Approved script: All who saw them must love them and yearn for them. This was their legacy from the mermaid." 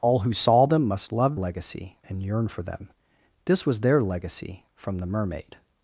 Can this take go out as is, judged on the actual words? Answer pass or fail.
fail